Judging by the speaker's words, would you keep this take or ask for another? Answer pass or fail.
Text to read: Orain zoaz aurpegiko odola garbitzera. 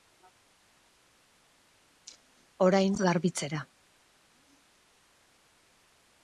fail